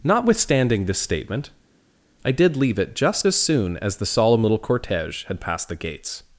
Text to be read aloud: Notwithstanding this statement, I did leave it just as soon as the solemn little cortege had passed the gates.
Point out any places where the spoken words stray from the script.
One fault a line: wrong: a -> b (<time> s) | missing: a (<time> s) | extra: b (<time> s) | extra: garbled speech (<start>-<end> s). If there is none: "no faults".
no faults